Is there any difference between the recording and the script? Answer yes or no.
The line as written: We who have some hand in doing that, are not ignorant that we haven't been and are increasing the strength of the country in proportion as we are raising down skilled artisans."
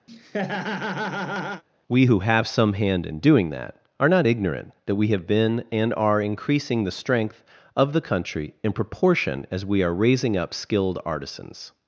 yes